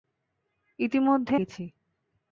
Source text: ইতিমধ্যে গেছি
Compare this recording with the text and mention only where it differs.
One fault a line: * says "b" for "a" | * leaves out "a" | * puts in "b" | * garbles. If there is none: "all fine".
all fine